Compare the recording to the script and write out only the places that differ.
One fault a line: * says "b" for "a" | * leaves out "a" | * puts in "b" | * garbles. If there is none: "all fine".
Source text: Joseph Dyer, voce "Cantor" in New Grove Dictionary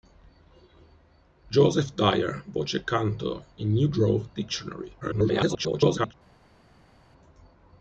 * garbles